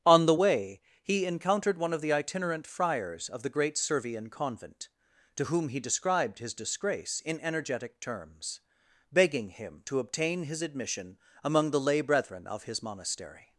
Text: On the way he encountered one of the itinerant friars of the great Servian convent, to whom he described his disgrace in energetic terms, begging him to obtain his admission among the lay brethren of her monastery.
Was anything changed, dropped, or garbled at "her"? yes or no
yes